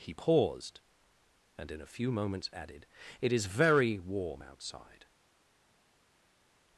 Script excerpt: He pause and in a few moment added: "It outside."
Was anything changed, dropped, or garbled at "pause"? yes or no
yes